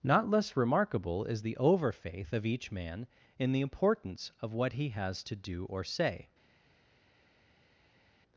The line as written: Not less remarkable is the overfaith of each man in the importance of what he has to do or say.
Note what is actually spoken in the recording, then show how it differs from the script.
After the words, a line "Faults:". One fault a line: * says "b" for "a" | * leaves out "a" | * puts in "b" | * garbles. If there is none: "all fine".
Not less remarkable is the overfaith of each man in the importance of what he has to do or say.
Faults:
all fine